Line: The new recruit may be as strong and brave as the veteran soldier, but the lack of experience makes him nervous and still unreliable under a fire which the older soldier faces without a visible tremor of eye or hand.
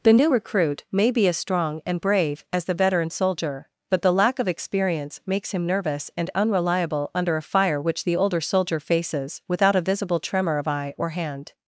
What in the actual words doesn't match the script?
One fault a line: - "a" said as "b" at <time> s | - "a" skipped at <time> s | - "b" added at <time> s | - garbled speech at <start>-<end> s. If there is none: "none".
- "still" skipped at 6.3 s